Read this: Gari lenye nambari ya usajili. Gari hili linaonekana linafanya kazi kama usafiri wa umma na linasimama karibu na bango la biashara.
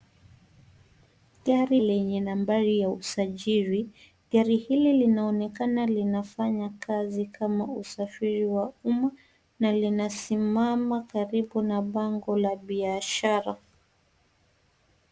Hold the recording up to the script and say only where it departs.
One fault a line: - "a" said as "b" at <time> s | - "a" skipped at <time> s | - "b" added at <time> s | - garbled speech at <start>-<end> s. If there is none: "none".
none